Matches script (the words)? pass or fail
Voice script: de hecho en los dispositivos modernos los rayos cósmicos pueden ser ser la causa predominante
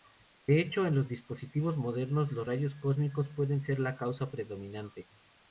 fail